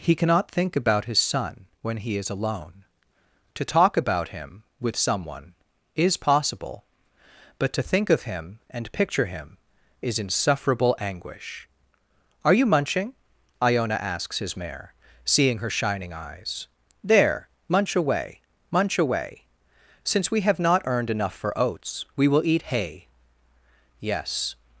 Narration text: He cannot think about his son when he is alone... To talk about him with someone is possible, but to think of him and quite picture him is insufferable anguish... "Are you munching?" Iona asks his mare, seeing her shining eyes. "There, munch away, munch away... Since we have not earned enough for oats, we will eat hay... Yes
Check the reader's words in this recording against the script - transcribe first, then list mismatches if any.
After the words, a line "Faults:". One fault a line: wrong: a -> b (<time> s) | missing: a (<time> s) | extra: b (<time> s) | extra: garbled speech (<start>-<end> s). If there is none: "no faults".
He cannot think about his son when he is alone... To talk about him with someone is possible, but to think of him and picture him is insufferable anguish... "Are you munching?" Iona asks his mare, seeing her shining eyes. "There, munch away, munch away... Since we have not earned enough for oats, we will eat hay... Yes
Faults:
missing: quite (8.9 s)